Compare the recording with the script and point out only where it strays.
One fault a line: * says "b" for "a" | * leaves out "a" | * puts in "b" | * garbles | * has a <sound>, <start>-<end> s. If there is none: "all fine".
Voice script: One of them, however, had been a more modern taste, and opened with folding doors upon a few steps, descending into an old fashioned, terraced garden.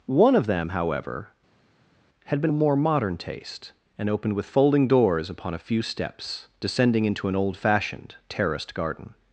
all fine